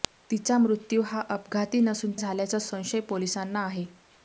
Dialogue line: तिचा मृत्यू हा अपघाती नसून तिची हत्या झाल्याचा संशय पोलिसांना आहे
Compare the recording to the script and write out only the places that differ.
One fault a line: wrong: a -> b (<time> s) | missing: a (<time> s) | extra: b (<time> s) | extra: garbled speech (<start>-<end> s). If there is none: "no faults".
missing: तिची हत्या (2.1 s)